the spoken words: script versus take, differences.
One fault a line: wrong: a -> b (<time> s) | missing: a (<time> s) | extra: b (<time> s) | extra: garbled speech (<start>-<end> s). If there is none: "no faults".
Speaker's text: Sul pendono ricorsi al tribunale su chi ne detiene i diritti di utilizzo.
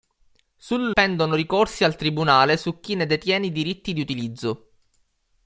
no faults